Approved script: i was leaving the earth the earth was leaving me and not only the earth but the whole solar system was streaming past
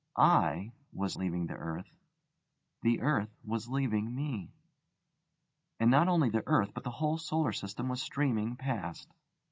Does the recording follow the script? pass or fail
pass